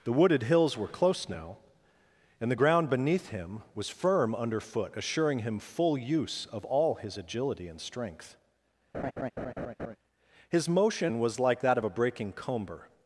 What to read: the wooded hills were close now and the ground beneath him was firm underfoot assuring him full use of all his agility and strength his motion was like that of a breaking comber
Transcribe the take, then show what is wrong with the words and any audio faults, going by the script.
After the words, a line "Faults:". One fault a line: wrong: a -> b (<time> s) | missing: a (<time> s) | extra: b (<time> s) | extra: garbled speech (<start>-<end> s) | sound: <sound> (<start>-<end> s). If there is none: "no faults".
the wooded hills were close now and the ground beneath him was firm underfoot assuring him full use of all his agility and strength his motion was like that of a breaking comber
Faults:
sound: laugh (8.9-10.0 s)